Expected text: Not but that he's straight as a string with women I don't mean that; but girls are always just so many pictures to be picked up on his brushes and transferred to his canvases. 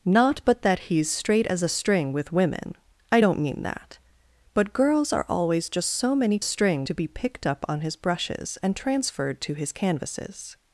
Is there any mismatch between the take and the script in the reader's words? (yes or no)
yes